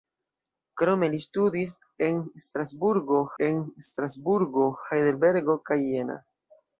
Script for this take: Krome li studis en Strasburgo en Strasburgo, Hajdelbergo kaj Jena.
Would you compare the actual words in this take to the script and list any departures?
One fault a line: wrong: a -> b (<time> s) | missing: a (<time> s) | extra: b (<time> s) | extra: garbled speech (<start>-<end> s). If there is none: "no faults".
no faults